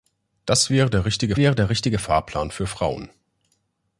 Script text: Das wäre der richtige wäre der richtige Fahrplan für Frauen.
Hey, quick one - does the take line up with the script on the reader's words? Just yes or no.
yes